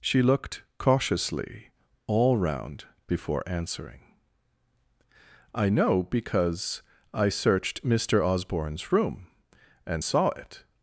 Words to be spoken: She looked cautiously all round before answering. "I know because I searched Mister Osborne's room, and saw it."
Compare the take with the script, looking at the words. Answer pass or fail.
pass